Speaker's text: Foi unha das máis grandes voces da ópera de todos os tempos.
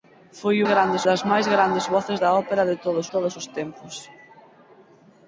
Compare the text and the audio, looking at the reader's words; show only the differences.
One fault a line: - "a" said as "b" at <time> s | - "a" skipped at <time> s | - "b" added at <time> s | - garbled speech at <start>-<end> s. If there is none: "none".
- "unha" said as "grandes" at 0.7 s
- "todos" added at 3.1 s